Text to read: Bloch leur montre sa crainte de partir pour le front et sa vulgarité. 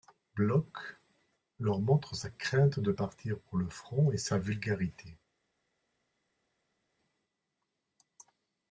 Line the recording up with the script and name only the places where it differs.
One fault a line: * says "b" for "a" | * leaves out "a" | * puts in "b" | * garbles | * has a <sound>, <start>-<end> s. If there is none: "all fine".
all fine